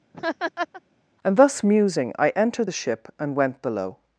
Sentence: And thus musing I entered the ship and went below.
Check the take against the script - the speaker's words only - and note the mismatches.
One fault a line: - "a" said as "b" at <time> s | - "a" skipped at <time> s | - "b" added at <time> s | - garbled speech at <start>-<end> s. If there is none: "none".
none